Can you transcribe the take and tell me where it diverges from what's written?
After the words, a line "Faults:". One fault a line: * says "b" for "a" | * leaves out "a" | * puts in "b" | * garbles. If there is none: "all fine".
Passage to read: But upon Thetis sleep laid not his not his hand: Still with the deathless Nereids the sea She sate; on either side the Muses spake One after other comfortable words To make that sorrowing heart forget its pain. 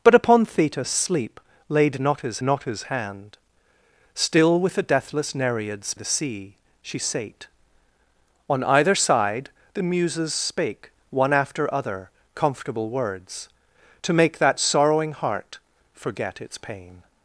But upon Thetis sleep laid not his not his hand: Still with the deathless Nereids the sea She sate; on either side the Muses spake One after other comfortable words To make that sorrowing heart forget its pain.
Faults:
all fine